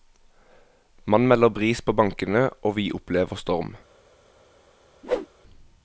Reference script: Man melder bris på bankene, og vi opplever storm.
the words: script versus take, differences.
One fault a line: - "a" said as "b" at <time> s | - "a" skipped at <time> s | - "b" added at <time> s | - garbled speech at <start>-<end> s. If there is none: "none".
none